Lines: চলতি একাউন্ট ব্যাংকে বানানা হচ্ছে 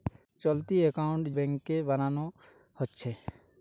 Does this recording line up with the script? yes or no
yes